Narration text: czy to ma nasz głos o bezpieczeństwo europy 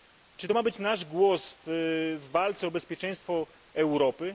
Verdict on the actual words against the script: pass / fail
fail